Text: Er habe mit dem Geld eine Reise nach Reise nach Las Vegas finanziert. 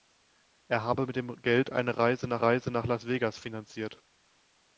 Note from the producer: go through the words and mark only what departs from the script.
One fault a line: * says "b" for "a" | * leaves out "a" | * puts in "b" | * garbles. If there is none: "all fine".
all fine